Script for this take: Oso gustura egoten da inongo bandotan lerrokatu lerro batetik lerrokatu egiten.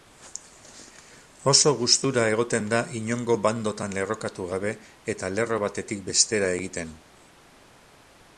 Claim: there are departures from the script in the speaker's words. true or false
true